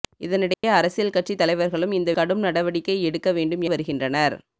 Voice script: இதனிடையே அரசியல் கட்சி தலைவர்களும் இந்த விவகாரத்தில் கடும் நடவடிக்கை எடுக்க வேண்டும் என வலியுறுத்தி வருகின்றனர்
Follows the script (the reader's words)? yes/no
no